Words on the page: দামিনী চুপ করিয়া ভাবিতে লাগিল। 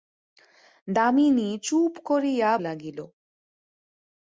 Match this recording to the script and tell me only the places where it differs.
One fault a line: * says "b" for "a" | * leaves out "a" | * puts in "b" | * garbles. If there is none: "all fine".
* leaves out "ভাবিতে"